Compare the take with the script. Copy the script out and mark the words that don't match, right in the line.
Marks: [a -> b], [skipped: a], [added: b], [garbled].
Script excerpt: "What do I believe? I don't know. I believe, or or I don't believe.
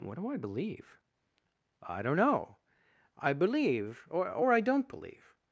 "What do I believe? I don't know. I believe, or or I don't believe.